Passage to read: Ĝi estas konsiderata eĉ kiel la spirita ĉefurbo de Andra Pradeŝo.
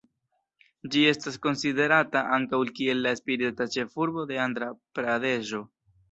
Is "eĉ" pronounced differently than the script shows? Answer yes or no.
yes